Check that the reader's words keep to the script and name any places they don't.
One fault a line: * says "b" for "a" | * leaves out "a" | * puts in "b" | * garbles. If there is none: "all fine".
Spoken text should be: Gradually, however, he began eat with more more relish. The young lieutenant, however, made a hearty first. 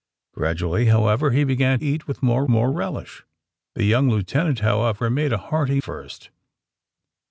all fine